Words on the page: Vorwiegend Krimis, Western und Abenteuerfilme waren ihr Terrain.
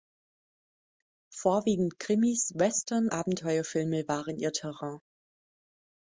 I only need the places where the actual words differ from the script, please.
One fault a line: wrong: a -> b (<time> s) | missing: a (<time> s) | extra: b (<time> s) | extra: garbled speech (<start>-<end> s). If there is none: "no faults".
missing: und (3.1 s)